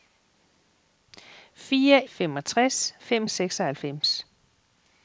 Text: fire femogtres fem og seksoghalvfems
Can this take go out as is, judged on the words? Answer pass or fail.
pass